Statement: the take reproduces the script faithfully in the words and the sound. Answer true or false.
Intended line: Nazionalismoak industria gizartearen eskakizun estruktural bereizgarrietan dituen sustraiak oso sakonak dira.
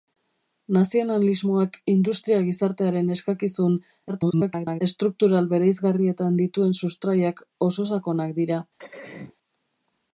false